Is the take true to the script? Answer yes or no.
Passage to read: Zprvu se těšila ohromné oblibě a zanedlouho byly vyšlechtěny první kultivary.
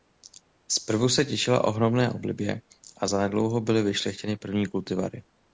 yes